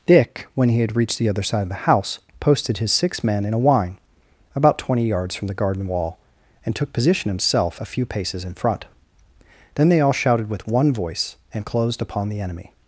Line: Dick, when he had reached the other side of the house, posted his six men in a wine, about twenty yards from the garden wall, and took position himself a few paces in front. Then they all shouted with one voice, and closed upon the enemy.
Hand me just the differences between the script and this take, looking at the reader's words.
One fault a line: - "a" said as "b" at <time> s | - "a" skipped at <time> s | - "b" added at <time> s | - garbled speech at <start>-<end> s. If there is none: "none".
none